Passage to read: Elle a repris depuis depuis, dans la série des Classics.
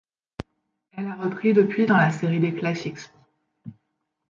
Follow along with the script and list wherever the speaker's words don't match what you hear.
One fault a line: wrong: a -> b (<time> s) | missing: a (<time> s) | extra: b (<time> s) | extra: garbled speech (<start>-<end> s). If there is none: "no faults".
missing: depuis (1.9 s)